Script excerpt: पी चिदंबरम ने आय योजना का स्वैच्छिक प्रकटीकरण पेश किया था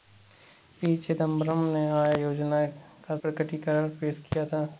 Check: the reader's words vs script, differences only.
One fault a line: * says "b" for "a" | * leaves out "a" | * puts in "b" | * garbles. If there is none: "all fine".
* leaves out "स्वैच्छिक"